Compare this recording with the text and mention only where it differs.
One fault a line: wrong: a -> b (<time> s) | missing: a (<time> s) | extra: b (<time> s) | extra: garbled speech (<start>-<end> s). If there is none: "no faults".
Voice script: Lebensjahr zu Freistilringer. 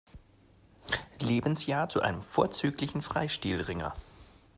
extra: einem vorzüglichen (2.0 s)